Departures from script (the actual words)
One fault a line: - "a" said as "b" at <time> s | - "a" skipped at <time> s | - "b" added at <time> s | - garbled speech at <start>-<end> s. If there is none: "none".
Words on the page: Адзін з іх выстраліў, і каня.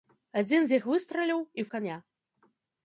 none